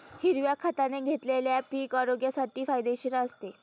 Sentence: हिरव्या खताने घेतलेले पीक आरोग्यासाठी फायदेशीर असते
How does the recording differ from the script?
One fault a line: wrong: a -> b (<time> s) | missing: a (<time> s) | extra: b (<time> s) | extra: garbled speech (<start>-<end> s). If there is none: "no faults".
no faults